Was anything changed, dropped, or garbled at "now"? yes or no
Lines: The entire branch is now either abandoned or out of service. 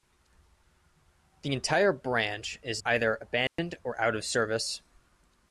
yes